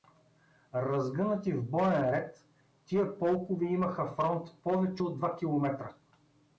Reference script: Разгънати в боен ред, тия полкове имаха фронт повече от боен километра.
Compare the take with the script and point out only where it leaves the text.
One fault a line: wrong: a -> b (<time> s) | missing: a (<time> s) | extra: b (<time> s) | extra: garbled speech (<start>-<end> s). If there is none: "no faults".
wrong: боен -> два (5.2 s)